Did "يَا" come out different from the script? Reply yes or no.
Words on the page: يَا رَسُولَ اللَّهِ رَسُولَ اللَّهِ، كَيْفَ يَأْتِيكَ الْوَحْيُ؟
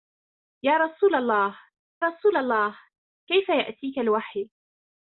no